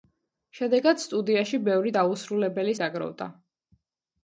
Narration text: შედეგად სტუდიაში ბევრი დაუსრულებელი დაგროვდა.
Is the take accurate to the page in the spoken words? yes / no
yes